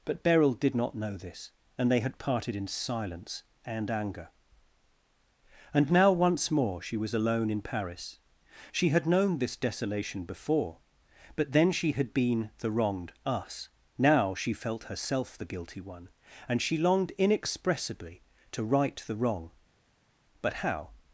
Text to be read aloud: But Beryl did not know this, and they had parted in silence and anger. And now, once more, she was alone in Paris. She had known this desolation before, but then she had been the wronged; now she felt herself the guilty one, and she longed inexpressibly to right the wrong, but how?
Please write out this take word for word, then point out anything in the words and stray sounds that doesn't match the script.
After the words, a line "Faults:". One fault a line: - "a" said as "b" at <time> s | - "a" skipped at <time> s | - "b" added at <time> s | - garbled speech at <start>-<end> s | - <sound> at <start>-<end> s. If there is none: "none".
But Beryl did not know this, and they had parted in silence and anger. And now, once more, she was alone in Paris. She had known this desolation before, but then she had been the wronged; us now she felt herself the guilty one, and she longed inexpressibly to right the wrong, but how?
Faults:
- "us" added at 13.3 s